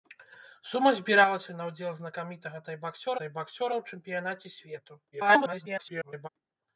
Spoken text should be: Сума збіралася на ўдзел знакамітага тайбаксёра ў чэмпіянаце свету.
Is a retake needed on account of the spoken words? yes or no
yes